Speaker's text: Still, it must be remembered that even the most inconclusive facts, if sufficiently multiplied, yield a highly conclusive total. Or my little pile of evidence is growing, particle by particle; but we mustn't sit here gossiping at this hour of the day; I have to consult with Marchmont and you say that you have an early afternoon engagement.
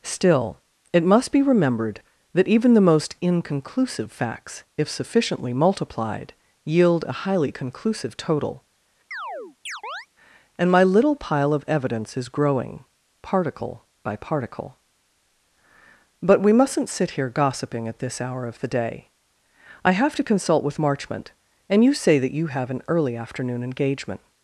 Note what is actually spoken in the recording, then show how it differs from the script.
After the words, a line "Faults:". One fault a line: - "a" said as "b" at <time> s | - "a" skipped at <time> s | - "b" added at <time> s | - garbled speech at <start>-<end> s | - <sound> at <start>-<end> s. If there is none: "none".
Still, it must be remembered that even the most inconclusive facts, if sufficiently multiplied, yield a highly conclusive total. And my little pile of evidence is growing, particle by particle; but we mustn't sit here gossiping at this hour of the day; I have to consult with Marchmont and you say that you have an early afternoon engagement.
Faults:
- chirp at 9.1-10.1 s
- "Or" said as "And" at 10.6 s